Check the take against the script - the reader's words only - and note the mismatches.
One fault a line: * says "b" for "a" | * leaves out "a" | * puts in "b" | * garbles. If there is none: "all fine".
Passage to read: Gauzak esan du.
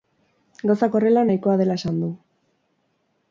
* puts in "horrela nahikoa dela"